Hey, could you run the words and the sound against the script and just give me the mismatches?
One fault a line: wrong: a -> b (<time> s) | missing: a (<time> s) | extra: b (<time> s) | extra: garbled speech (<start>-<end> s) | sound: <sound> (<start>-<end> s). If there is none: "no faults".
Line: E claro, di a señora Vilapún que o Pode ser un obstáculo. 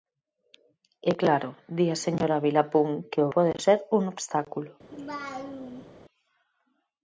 sound: laugh (4.9-5.9 s)